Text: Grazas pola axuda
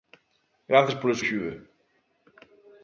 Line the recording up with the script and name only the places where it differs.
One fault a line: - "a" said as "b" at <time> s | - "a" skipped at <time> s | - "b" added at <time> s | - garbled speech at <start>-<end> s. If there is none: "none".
none